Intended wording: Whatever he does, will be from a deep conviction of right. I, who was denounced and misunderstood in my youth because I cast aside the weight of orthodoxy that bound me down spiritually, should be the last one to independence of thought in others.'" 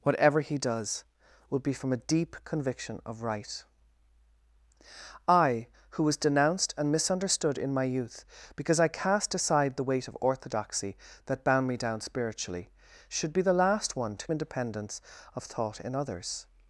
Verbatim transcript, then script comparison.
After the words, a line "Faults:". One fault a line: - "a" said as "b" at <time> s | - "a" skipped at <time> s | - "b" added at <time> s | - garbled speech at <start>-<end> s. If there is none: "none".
Whatever he does, will be from a deep conviction of right. I, who was denounced and misunderstood in my youth because I cast aside the weight of orthodoxy that bound me down spiritually, should be the last one to independence of thought in others.'"
Faults:
none